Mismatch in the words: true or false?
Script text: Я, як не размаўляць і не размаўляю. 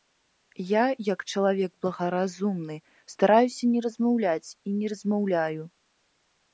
true